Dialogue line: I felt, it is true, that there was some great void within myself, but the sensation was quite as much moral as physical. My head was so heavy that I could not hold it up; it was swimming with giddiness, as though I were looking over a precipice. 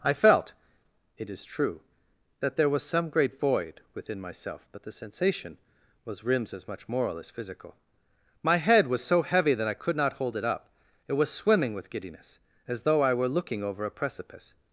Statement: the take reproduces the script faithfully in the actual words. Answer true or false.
false